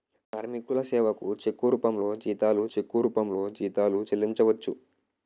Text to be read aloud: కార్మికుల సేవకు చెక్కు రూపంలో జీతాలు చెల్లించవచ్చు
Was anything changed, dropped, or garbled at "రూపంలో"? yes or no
no